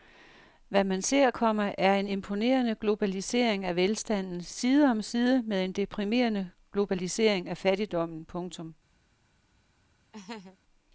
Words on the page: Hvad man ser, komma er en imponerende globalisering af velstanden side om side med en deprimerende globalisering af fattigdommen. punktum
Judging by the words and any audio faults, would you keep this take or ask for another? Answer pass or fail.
fail